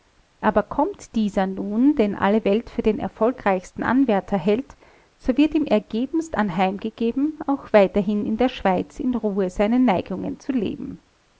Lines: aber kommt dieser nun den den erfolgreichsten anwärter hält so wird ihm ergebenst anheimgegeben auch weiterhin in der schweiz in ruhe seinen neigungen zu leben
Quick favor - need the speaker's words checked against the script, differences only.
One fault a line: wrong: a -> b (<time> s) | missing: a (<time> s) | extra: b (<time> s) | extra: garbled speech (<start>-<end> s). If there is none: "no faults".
extra: alle welt für (2.1 s)